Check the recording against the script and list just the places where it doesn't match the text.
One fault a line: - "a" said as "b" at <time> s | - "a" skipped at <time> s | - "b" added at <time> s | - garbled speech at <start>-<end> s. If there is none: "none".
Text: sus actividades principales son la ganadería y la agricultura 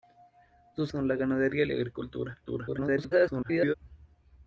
- "actividades principales" skipped at 0.9 s
- garbled speech at 2.5-3.7 s